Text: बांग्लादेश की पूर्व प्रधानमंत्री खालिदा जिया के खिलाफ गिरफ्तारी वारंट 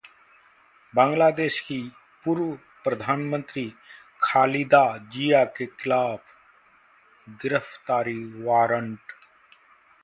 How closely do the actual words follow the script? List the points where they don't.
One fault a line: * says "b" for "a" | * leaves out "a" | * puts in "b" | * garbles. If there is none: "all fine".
all fine